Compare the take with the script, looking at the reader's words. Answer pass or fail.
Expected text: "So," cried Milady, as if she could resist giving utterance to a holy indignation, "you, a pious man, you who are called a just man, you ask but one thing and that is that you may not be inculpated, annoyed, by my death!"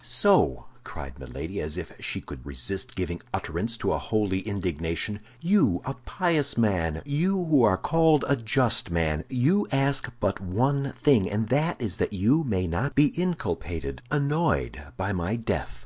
pass